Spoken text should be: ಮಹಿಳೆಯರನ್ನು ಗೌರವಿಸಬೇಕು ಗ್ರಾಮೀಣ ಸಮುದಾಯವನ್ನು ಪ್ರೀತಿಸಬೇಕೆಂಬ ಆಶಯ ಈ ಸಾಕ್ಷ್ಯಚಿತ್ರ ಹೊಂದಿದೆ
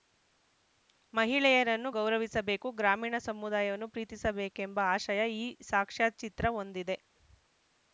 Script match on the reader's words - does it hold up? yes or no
yes